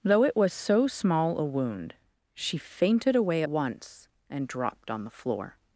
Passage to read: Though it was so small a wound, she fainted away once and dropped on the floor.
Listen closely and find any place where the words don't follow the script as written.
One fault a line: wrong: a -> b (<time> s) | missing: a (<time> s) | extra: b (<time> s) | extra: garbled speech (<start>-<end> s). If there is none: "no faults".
no faults